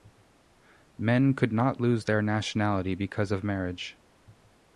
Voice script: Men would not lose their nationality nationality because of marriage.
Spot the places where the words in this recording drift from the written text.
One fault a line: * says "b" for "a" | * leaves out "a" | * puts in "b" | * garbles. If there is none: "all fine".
* says "could" for "would"
* leaves out "nationality"